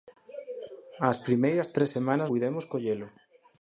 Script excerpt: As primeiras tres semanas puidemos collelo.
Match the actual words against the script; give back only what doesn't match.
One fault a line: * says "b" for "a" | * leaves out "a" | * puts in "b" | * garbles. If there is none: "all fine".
all fine